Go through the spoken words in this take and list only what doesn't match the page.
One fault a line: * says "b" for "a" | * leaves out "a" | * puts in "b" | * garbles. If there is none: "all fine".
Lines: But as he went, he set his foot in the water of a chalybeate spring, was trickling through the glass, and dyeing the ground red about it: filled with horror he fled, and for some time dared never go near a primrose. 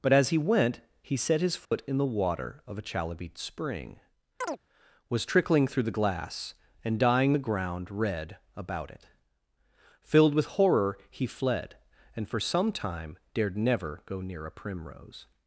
all fine